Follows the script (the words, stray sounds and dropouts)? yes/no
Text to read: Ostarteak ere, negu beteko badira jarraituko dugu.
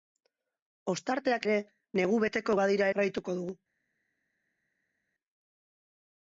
yes